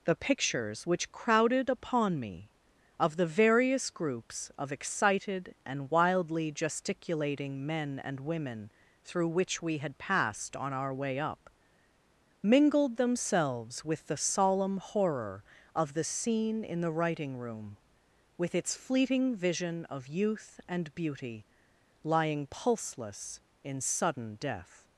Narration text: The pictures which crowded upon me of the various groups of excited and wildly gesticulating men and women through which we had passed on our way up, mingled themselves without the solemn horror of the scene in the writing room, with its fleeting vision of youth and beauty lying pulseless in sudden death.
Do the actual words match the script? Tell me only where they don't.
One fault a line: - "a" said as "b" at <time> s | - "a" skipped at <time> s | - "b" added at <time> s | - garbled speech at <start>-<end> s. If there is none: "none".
- "without" said as "with" at 13.8 s